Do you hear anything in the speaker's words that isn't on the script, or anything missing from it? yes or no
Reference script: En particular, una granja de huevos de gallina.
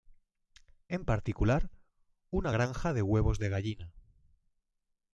no